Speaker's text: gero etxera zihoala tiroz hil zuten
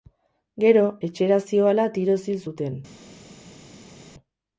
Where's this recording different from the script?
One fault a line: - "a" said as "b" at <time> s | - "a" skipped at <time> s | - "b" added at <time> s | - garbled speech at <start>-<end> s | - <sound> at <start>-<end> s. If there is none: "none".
none